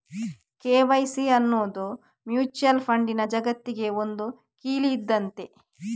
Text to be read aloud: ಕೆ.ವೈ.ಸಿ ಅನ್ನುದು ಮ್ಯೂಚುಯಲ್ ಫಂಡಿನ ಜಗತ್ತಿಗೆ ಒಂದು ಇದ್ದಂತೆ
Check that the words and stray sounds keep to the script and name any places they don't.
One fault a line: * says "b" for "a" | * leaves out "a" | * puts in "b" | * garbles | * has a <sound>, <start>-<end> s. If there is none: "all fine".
* puts in "ಕೀಲಿ"